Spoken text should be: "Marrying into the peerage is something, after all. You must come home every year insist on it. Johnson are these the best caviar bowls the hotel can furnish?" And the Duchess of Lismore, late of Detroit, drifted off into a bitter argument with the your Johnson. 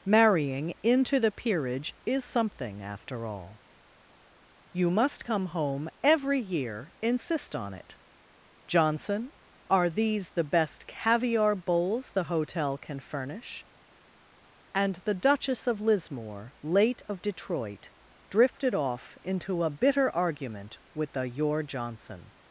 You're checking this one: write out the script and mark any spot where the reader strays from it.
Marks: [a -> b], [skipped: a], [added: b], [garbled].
"Marrying into the peerage is something, after all. You must come home every year insist on it. Johnson are these the best caviar bowls the hotel can furnish?" And the Duchess of Lismore, late of Detroit, drifted off into a bitter argument with the your Johnson.